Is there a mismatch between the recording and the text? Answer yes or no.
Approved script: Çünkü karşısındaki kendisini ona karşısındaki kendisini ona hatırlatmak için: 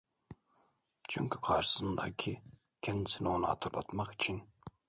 yes